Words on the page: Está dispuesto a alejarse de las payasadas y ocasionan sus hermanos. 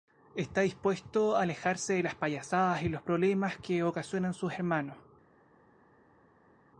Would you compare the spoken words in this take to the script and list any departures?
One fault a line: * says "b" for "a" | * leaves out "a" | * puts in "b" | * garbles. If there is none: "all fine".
* puts in "los problemas que"